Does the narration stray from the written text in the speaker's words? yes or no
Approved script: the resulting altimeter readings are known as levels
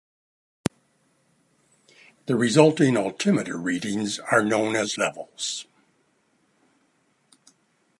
no